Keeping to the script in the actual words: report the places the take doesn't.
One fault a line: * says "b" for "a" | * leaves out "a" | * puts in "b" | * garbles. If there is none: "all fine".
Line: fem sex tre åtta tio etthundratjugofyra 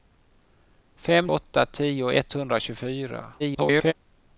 * leaves out "sex tre"
* garbles